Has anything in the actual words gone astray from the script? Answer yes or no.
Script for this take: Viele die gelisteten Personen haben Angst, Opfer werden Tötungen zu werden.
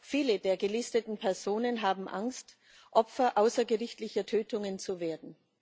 yes